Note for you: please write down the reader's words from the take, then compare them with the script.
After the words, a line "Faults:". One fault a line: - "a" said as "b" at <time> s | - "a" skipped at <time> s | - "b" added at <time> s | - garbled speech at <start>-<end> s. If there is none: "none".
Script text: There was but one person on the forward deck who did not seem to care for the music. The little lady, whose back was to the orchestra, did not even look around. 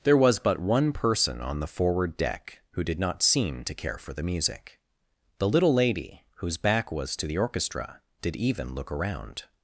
There was but one person on the forward deck who did not seem to care for the music. The little lady, whose back was to the orchestra, did even look around.
Faults:
- "not" skipped at 8.4 s